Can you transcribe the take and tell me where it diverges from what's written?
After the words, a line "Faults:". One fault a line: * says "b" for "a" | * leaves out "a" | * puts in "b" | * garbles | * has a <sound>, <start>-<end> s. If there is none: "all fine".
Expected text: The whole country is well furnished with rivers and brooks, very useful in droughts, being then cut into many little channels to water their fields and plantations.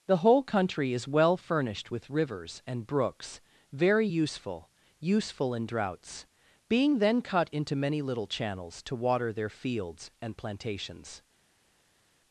The whole country is well furnished with rivers and brooks, very useful useful in droughts, being then cut into many little channels to water their fields and plantations.
Faults:
* puts in "useful"